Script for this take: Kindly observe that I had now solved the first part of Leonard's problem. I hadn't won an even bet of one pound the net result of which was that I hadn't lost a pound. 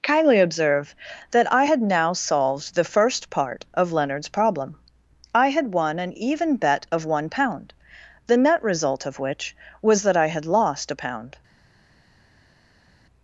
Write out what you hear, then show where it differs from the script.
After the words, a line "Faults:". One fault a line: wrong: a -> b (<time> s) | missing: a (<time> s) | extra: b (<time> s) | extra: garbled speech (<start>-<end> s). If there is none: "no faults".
Kindly observe that I had now solved the first part of Leonard's problem. I had won an even bet of one pound the net result of which was that I had lost a pound.
Faults:
wrong: hadn't -> had (5.5 s)
wrong: hadn't -> had (10.3 s)